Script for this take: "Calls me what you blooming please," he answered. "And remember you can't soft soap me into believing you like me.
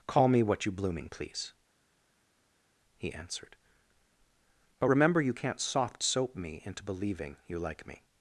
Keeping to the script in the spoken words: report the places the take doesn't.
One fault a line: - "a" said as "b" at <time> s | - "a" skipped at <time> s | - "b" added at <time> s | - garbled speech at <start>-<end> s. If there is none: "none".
- "Calls" said as "Call" at 0.1 s
- "And" said as "But" at 4.8 s